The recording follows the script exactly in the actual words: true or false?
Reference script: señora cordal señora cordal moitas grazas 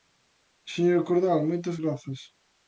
false